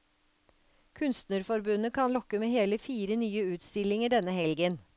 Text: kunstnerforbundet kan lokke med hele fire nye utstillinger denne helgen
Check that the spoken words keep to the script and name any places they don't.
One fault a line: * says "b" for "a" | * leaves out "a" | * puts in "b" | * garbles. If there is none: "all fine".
all fine